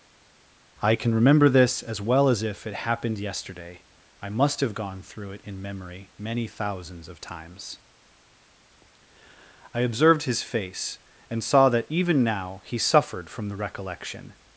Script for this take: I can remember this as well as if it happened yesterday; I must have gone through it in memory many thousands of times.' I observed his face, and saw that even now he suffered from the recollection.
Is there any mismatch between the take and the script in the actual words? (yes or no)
no